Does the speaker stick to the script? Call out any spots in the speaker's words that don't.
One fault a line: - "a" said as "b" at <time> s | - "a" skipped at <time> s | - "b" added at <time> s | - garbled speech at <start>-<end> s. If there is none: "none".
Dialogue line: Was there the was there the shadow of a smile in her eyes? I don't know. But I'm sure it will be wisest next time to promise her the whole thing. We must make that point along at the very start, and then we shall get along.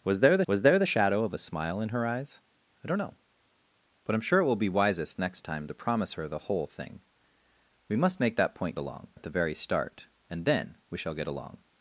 none